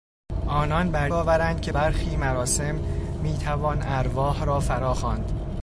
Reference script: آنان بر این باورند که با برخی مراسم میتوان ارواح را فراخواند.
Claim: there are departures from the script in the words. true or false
true